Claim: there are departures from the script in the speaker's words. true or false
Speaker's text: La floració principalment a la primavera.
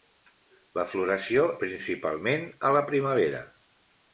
false